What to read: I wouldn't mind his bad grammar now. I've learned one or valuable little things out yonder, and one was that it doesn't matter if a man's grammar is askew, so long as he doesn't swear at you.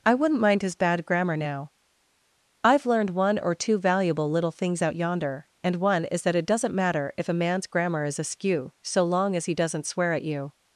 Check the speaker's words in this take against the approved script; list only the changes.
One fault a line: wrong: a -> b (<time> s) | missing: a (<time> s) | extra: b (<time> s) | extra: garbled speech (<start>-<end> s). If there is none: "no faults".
extra: two (3.5 s)
wrong: was -> is (6.0 s)